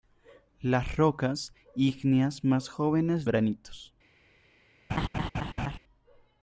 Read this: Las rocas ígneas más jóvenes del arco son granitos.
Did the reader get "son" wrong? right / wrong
wrong